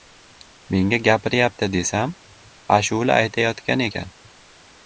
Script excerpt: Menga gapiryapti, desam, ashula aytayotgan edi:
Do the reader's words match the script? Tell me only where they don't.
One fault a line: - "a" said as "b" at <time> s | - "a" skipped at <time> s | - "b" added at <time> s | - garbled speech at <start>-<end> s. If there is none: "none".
- "edi" said as "ekan" at 3.9 s